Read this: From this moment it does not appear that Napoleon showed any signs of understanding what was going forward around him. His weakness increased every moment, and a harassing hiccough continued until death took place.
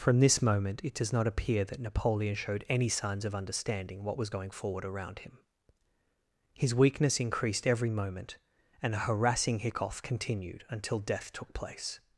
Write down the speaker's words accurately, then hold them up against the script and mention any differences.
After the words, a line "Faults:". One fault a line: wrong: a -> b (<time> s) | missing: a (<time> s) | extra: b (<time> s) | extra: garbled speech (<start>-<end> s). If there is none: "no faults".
From this moment it does not appear that Napoleon showed any signs of understanding what was going forward around him. His weakness increased every moment, and a harassing hiccough continued until death took place.
Faults:
no faults